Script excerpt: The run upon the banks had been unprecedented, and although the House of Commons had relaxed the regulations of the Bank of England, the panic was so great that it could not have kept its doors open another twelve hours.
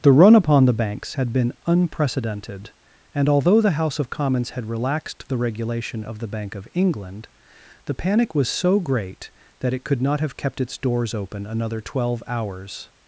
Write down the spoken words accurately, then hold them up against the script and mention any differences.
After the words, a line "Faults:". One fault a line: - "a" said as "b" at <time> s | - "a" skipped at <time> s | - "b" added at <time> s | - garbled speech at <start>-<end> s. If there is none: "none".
The run upon the banks had been unprecedented, and although the House of Commons had relaxed the regulation of the Bank of England, the panic was so great that it could not have kept its doors open another twelve hours.
Faults:
- "regulations" said as "regulation" at 5.4 s